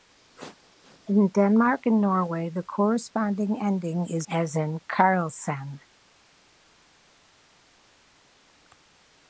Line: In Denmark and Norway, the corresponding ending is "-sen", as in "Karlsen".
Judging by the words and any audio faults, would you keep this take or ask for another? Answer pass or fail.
fail